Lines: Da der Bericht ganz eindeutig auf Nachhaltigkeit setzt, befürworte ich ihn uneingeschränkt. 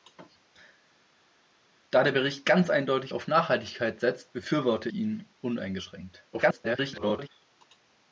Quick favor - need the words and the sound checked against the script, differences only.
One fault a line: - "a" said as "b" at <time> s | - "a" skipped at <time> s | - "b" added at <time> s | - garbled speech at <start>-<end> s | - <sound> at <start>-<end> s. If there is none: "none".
- "ich" skipped at 4.9 s
- garbled speech at 6.3-7.3 s